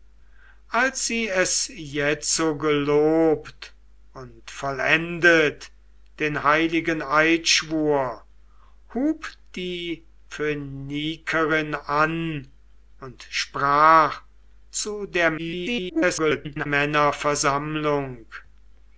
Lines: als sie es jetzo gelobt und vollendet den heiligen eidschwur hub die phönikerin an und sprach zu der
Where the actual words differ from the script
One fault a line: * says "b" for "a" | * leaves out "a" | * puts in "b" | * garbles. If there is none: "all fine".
* garbles